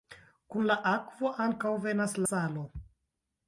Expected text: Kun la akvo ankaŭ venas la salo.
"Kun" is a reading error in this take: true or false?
false